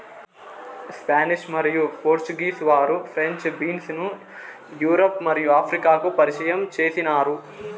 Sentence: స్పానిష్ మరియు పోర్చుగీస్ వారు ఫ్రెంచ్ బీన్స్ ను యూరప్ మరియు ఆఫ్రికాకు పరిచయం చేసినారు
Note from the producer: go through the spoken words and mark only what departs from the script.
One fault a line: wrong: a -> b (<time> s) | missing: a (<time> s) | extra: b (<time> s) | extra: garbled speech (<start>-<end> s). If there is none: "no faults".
no faults